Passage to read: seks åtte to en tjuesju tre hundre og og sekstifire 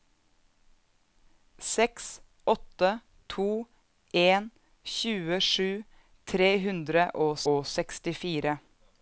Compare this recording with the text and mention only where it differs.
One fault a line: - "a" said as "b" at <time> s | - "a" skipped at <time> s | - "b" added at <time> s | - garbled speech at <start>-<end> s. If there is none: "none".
none